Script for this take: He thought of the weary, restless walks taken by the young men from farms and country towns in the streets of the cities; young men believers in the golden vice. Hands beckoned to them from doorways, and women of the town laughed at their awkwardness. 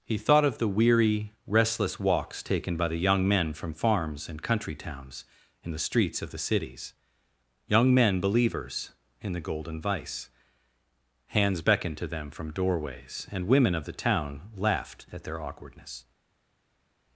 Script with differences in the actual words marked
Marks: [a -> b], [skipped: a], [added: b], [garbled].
He thought of the weary, restless walks taken by the young men from farms and country towns in the streets of the cities; young men believers in the golden vice. Hands beckoned to them from doorways, and women of the town laughed at their awkwardness.